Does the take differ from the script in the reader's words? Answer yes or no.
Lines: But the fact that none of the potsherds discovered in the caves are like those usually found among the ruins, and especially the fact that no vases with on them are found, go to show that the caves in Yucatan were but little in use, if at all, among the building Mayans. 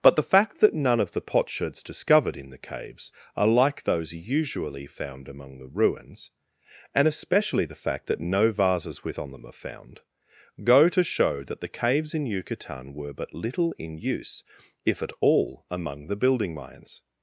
no